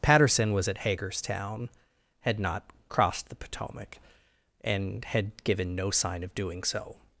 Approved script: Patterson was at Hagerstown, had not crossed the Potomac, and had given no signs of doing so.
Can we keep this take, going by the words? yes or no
no